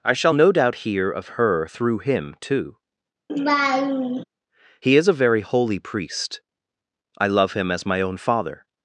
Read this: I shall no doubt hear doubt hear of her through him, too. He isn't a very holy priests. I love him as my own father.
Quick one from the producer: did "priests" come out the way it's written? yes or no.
no